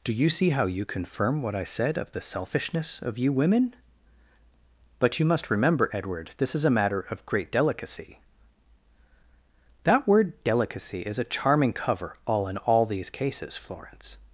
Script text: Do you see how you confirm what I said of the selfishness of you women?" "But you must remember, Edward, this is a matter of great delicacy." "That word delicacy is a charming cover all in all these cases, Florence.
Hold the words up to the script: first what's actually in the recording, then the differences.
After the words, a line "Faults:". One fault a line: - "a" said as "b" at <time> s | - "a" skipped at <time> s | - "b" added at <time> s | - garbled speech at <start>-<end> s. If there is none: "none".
Do you see how you confirm what I said of the selfishness of you women?" "But you must remember, Edward, this is a matter of great delicacy." "That word delicacy is a charming cover all in all these cases, Florence.
Faults:
none